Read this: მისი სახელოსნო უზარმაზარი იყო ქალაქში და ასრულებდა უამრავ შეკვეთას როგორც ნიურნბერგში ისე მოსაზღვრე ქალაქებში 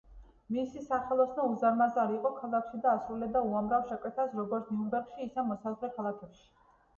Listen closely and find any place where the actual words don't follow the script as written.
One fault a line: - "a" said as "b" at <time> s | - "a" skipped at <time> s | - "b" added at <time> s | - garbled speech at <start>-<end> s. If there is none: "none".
none